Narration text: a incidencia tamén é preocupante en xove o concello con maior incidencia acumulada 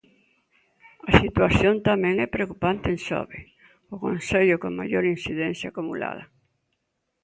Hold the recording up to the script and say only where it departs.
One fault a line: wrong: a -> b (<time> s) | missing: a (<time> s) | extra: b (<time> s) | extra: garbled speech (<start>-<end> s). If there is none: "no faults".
wrong: incidencia -> situación (1.2 s)